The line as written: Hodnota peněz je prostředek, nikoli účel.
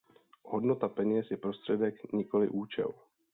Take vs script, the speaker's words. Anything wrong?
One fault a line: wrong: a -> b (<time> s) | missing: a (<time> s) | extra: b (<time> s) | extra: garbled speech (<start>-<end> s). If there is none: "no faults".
no faults